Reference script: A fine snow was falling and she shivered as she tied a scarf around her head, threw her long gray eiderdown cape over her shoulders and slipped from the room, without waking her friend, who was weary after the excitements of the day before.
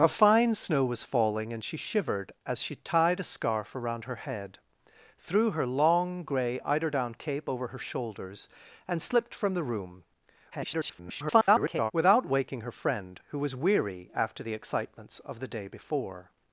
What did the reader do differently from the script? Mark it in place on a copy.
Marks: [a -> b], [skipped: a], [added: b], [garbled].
A fine snow was falling and she shivered as she tied a scarf around her head, threw her long gray eiderdown cape over her shoulders and slipped from the room, [garbled] without waking her friend, who was weary after the excitements of the day before.